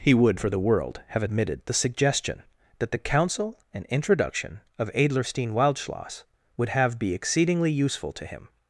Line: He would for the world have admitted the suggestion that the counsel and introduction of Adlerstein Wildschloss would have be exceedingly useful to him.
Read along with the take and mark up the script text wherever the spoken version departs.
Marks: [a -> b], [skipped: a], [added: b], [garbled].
He would for the world have admitted the suggestion that the counsel and introduction of Adlerstein Wildschloss would have be exceedingly useful to him.